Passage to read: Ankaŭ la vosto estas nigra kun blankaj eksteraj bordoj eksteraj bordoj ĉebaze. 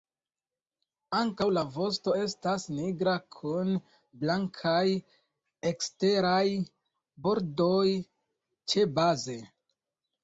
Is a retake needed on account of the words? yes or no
yes